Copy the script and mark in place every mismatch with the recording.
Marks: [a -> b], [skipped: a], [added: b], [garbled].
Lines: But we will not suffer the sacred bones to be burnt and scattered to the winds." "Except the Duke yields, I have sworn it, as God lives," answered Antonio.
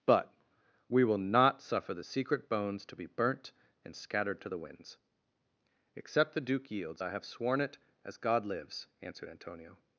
But we will not suffer the [sacred -> secret] bones to be burnt and scattered to the winds." "Except the Duke yields, I have sworn it, as God lives," answered Antonio.